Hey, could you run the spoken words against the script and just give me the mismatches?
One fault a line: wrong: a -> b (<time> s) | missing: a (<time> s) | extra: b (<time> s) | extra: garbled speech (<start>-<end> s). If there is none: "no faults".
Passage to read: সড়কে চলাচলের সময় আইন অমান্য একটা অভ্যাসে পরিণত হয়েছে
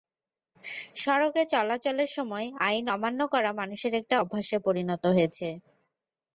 extra: করা মানুষের (3.3 s)